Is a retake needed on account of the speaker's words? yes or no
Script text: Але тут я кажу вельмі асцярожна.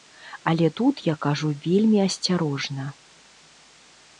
no